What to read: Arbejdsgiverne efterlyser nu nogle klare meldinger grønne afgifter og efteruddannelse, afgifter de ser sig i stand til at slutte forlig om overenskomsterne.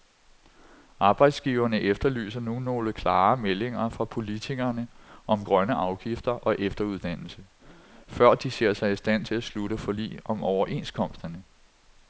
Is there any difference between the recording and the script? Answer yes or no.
yes